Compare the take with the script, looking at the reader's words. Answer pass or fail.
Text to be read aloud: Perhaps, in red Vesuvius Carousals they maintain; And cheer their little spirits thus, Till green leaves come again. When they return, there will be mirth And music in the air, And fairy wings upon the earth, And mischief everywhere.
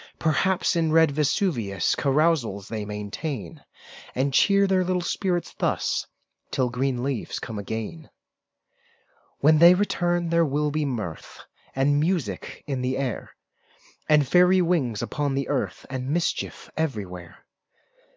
pass